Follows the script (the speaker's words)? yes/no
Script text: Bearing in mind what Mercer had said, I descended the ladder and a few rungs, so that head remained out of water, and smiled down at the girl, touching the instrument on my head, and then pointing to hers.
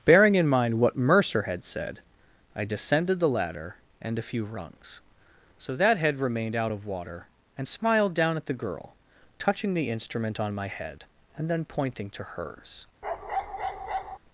yes